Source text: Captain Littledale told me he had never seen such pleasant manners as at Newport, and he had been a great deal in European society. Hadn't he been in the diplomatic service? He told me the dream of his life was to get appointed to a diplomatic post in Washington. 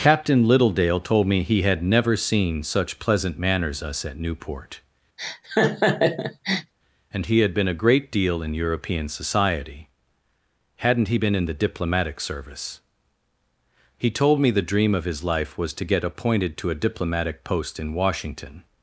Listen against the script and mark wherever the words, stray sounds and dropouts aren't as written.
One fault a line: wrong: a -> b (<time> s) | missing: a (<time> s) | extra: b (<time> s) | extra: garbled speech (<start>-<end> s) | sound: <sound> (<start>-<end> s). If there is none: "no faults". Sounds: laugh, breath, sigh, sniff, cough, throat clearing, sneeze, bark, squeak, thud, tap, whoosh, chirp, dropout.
wrong: as -> us (3.8 s)
sound: laugh (5.2-6.7 s)